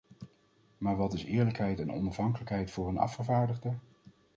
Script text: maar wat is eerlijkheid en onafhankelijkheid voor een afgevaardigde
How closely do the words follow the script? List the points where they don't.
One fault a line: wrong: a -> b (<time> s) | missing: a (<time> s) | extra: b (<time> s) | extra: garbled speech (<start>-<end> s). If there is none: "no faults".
no faults